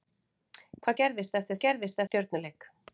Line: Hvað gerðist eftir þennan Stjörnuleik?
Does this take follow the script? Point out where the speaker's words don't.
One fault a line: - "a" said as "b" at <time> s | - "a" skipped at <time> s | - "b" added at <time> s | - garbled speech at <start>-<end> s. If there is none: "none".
- "þennan" said as "gerðist" at 1.7 s